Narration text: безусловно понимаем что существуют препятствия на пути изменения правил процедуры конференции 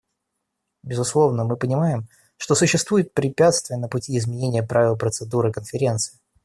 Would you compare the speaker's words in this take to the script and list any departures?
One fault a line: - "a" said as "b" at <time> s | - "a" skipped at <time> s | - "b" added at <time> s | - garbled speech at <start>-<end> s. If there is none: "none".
- "мы" added at 1.4 s